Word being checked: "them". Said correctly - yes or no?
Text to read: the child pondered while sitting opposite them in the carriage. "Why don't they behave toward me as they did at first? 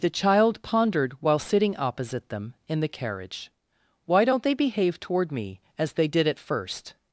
yes